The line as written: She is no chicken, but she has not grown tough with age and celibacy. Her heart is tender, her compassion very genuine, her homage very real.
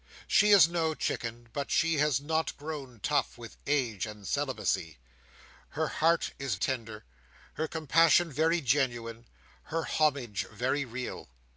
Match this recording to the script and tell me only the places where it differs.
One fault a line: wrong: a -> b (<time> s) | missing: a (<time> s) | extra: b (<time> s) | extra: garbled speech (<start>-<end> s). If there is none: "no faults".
no faults